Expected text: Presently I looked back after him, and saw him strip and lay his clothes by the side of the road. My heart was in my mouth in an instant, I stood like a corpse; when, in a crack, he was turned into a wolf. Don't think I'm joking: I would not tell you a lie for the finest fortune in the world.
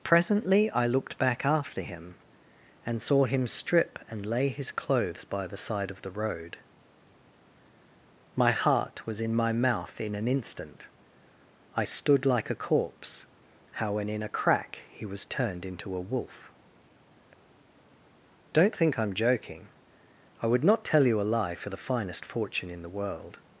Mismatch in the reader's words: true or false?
true